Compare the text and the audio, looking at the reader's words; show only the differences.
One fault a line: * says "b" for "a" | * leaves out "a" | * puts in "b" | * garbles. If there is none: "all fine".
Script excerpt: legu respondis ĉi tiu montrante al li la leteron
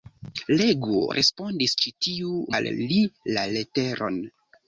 * leaves out "montrante"